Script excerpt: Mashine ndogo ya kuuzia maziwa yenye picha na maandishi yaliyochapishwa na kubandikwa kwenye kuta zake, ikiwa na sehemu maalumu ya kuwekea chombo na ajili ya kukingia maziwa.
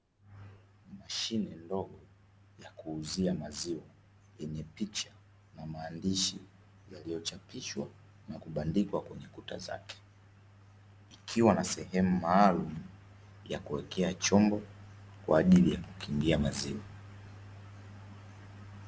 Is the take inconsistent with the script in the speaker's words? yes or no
yes